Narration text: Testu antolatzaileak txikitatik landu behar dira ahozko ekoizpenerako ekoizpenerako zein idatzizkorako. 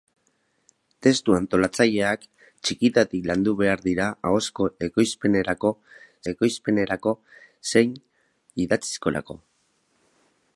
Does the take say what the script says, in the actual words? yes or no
yes